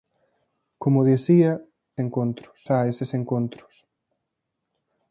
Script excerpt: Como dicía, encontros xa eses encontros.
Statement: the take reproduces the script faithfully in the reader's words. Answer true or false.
true